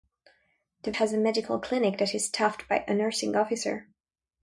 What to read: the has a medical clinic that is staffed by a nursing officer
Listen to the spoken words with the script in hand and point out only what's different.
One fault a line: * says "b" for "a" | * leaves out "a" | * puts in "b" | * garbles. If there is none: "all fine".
all fine